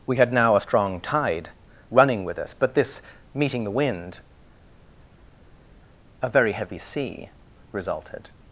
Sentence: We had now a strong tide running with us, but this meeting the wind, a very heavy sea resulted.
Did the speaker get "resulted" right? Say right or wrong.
right